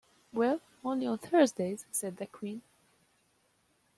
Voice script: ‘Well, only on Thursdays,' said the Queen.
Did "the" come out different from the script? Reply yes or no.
no